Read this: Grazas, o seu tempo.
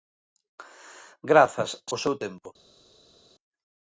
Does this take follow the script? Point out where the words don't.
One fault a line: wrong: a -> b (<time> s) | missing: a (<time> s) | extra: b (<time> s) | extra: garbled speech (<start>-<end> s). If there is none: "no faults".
no faults